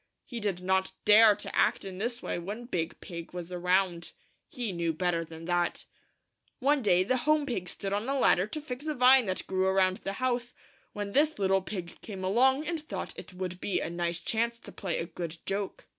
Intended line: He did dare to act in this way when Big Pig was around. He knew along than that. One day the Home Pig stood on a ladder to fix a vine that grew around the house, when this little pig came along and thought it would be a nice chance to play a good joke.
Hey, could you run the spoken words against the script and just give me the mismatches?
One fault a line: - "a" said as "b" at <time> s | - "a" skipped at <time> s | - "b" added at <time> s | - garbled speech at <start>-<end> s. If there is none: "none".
- "not" added at 0.6 s
- "along" said as "better" at 4.9 s